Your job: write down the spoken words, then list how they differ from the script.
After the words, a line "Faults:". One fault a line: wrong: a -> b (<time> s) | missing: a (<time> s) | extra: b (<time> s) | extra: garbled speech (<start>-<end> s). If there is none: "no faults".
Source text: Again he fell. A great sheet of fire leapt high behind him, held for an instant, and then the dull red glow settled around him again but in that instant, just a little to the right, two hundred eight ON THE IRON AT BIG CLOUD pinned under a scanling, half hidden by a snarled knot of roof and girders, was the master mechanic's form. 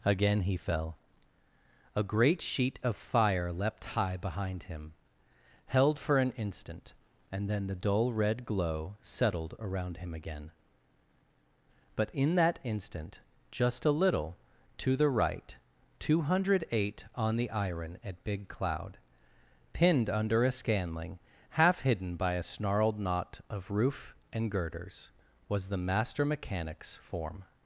Again he fell. A great sheet of fire leapt high behind him, held for an instant, and then the dull red glow settled around him again but in that instant, just a little to the right, two hundred eight ON THE IRON AT BIG CLOUD pinned under a scanling, half hidden by a snarled knot of roof and girders, was the master mechanic's form.
Faults:
no faults